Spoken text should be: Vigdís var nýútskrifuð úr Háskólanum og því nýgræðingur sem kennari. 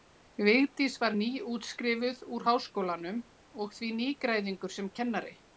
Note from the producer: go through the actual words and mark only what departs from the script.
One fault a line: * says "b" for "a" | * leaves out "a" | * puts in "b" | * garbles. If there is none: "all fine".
all fine